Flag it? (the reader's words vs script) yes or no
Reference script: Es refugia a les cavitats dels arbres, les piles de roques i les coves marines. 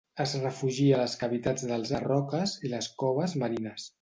yes